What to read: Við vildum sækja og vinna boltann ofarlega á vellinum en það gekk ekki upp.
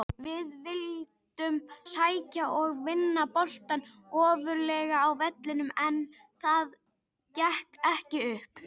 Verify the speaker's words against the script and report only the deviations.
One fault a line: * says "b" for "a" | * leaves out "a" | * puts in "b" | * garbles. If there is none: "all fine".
all fine